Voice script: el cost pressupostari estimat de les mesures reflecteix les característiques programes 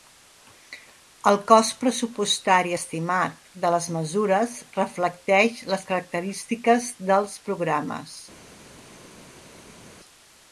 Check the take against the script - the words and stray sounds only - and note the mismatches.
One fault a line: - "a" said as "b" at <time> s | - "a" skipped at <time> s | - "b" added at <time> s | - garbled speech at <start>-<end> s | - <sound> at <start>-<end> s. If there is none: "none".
- "dels" added at 7.1 s